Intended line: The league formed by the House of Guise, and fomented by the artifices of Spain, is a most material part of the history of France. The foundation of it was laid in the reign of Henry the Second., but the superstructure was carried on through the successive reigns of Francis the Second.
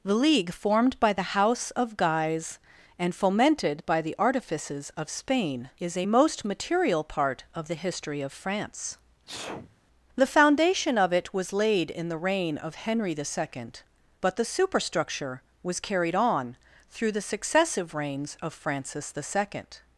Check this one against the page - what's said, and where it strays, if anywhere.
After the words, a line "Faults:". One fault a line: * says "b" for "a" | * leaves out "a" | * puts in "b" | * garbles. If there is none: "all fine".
The league formed by the House of Guise, and fomented by the artifices of Spain, is a most material part of the history of France. The foundation of it was laid in the reign of Henry the Second., but the superstructure was carried on through the successive reigns of Francis the Second.
Faults:
all fine